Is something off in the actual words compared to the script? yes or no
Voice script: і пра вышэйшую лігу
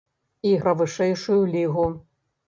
no